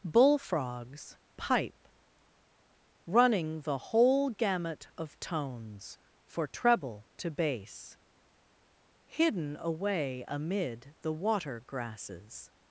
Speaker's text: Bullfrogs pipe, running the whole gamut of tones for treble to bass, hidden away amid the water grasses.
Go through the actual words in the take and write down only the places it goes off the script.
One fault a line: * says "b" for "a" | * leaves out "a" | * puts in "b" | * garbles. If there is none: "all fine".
all fine